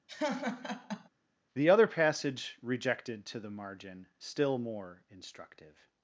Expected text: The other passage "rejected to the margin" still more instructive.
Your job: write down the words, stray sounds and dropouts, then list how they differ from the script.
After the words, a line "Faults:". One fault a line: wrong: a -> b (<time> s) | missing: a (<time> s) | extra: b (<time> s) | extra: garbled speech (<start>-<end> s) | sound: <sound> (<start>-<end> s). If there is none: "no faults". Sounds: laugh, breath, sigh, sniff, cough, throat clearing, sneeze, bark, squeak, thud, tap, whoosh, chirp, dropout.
The other passage "rejected to the margin" still more instructive.
Faults:
sound: laugh (0.1-1.1 s)